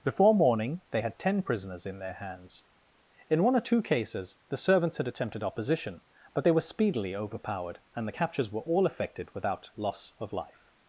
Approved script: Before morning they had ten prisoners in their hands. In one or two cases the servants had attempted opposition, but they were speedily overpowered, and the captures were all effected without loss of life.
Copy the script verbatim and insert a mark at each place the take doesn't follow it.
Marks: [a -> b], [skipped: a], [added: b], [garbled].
Before morning they had ten prisoners in their hands. In one or two cases the servants had attempted opposition, but they were speedily overpowered, and the captures were all effected without loss of life.